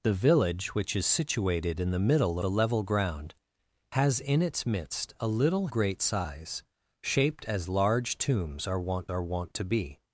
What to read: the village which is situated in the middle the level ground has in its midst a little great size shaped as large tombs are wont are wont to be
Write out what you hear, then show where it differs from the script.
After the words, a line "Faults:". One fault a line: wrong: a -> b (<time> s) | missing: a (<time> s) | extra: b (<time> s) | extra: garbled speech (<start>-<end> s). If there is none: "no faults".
the village which is situated in the middle the level ground has in its midst a little great size shaped as large tombs are wont are wont to be
Faults:
no faults